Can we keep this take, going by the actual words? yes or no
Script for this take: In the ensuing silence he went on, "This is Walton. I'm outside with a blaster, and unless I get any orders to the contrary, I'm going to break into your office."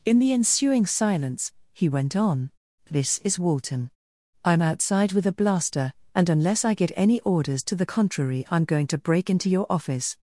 yes